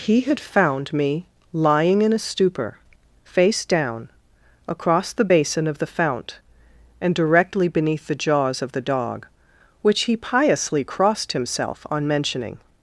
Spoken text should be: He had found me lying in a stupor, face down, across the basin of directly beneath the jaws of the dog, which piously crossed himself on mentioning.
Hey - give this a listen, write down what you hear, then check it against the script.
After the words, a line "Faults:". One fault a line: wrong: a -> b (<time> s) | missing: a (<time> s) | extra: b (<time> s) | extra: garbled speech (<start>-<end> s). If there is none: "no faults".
He had found me lying in a stupor, face down, across the basin of the fount, and directly beneath the jaws of the dog, which he piously crossed himself on mentioning.
Faults:
extra: the fount and (5.8 s)
extra: he (10.0 s)